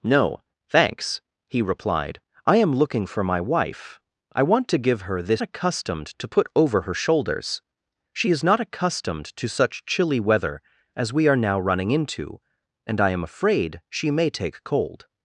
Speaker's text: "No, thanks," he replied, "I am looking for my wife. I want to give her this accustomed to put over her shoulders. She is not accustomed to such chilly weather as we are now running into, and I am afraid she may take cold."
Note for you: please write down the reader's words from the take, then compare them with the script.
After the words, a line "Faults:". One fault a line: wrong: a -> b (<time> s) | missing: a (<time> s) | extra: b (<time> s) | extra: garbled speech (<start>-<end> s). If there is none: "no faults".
"No, thanks," he replied, "I am looking for my wife. I want to give her this accustomed to put over her shoulders. She is not accustomed to such chilly weather as we are now running into, and I am afraid she may take cold."
Faults:
no faults